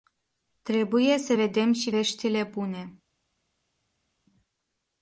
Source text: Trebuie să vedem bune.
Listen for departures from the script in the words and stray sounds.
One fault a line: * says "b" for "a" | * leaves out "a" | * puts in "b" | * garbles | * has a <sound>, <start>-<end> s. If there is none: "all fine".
* puts in "și veștile"